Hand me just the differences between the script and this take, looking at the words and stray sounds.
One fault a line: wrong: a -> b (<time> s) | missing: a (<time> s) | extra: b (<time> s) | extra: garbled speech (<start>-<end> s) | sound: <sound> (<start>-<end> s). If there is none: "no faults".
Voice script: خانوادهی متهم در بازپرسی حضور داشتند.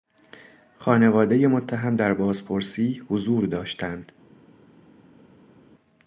no faults